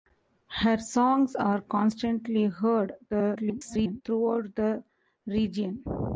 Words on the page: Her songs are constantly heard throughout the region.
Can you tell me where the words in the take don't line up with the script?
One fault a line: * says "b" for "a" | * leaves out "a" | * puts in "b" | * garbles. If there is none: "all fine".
* garbles